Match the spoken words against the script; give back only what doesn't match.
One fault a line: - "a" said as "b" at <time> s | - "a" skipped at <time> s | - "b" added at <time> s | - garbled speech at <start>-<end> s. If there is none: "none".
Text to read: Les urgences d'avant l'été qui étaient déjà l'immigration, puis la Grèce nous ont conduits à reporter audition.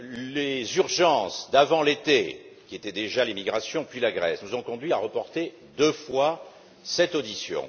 - "deux fois cette" added at 5.8 s